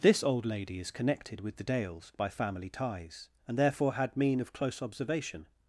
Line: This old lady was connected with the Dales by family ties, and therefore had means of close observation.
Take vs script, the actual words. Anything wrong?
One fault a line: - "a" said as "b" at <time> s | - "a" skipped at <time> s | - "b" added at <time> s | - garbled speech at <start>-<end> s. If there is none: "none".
- "was" said as "is" at 0.8 s
- "means" said as "mean" at 4.2 s